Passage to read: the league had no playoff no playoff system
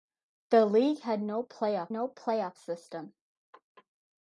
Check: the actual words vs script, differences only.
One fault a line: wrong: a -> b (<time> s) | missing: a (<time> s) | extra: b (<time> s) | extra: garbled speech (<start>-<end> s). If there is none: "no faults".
no faults